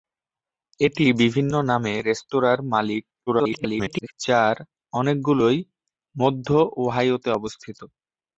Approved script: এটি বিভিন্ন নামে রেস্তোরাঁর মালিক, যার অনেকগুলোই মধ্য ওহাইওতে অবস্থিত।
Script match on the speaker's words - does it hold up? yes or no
no